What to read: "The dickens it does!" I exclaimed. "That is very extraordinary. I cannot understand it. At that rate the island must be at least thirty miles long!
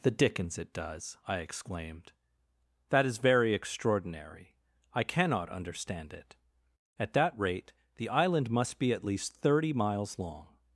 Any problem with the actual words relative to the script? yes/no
no